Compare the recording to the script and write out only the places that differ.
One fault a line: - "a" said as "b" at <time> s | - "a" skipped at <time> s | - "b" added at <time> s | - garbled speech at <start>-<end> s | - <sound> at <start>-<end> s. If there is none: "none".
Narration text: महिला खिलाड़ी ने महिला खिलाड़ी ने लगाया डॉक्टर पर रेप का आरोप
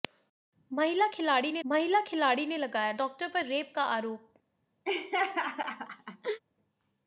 - laugh at 4.8-6.4 s